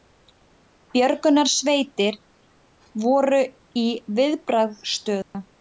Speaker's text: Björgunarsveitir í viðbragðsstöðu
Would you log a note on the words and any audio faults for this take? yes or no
yes